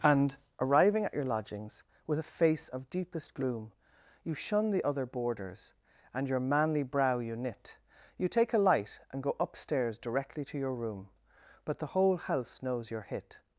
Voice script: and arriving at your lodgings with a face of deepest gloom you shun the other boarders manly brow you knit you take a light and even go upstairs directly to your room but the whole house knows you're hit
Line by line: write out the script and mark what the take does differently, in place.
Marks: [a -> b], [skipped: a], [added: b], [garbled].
and arriving at your lodgings with a face of deepest gloom you shun the other boarders [added: and your] manly brow you knit you take a light and [skipped: even] go upstairs directly to your room but the whole house knows you're hit